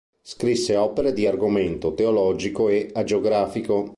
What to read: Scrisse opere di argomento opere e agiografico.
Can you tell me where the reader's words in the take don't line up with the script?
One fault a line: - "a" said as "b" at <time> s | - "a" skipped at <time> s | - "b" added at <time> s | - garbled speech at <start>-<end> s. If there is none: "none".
- "opere" said as "teologico" at 1.9 s